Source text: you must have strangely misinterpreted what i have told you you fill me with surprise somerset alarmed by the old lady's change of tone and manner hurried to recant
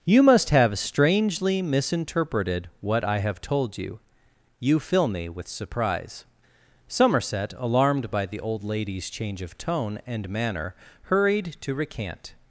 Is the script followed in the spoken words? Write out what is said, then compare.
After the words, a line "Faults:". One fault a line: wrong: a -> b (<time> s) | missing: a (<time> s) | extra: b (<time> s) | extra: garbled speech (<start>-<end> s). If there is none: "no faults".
you must have strangely misinterpreted what i have told you you fill me with surprise somerset alarmed by the old lady's change of tone and manner hurried to recant
Faults:
no faults